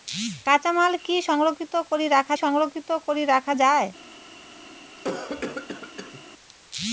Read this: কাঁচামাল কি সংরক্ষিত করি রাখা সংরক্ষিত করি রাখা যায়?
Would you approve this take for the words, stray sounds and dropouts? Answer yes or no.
no